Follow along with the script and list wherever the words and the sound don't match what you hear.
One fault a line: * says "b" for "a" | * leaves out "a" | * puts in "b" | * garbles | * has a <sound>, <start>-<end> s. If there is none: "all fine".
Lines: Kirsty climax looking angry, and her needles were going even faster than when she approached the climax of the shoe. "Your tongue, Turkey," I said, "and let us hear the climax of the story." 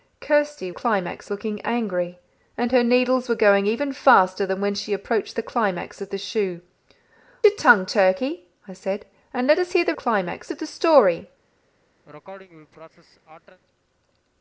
* has a sneeze, 12.0-13.6 s